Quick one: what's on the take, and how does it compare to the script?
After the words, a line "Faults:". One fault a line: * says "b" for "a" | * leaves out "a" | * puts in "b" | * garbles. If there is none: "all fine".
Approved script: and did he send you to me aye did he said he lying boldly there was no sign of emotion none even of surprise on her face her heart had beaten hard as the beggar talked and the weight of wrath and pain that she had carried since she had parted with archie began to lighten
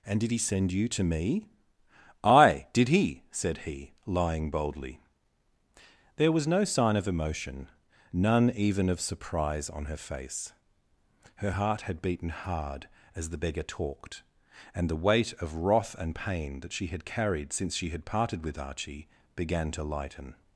and did he send you to me aye did he said he lying boldly there was no sign of emotion none even of surprise on her face her heart had beaten hard as the beggar talked and the weight of wrath and pain that she had carried since she had parted with archie began to lighten
Faults:
all fine